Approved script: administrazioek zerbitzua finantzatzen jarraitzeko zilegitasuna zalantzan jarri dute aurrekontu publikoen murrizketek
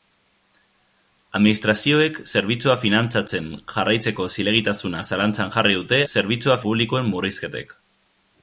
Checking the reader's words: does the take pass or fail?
fail